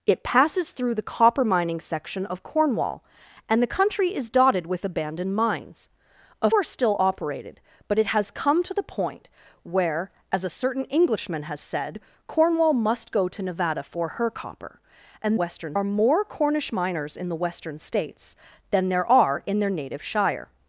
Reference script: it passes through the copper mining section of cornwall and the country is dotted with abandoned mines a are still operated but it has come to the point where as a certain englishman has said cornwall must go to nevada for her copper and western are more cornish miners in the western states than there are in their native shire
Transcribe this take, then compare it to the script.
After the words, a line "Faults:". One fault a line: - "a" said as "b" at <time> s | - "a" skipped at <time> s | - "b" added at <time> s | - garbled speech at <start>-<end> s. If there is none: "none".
it passes through the copper mining section of cornwall and the country is dotted with abandoned mines a are still operated but it has come to the point where as a certain englishman has said cornwall must go to nevada for her copper and western are more cornish miners in the western states than there are in their native shire
Faults:
none